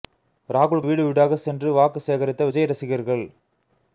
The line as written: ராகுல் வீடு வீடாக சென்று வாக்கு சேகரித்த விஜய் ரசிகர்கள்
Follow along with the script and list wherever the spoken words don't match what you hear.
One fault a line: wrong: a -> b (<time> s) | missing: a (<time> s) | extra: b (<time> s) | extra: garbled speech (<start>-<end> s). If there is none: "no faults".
no faults